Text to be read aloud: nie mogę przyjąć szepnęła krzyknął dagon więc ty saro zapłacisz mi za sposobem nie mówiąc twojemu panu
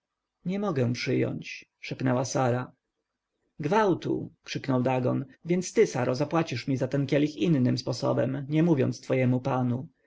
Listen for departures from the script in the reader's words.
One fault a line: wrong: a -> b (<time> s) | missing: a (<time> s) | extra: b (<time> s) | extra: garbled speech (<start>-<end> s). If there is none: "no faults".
extra: sara gwałtu (2.2 s)
extra: ten kielich innym (6.9 s)